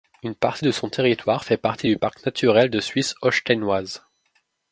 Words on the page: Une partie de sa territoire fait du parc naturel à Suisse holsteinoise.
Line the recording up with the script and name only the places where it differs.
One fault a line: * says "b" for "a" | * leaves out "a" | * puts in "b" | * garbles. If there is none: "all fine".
* says "son" for "sa"
* puts in "partie"
* says "de" for "à"